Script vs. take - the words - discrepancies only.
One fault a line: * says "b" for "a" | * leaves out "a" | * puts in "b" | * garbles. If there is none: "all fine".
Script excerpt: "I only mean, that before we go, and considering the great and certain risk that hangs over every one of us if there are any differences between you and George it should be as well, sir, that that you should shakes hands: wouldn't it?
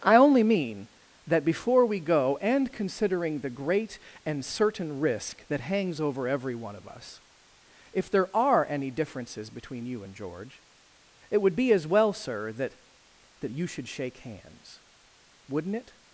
* says "would" for "should"
* says "shake" for "shakes"